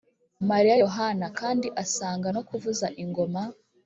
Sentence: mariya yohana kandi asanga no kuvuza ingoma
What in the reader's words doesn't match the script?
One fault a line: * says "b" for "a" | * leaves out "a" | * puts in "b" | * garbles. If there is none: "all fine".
all fine